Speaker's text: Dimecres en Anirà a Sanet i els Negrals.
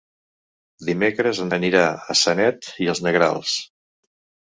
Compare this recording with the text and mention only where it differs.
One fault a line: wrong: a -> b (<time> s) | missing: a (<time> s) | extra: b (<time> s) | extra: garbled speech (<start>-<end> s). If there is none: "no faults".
no faults